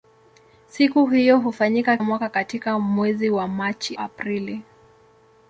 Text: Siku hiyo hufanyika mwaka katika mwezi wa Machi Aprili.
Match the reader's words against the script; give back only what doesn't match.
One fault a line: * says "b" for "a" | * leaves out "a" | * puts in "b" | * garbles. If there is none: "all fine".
all fine